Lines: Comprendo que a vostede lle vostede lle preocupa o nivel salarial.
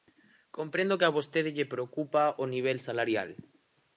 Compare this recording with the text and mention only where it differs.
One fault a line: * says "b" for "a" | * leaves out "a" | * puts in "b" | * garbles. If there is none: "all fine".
* leaves out "vostede lle"